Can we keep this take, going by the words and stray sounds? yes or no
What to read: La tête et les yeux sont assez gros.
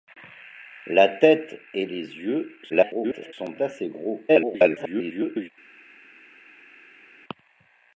no